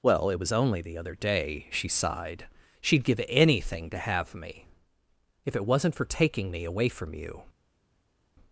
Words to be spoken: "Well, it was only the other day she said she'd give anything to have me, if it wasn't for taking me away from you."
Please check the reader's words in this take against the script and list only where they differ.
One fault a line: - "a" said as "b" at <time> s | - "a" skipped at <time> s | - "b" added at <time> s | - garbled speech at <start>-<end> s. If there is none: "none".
- "said" said as "sighed" at 1.9 s